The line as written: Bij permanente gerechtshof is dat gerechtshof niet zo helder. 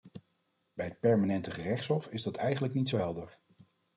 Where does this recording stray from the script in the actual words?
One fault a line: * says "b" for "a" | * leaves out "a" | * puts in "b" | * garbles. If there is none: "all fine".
* puts in "het"
* says "eigenlijk" for "gerechtshof"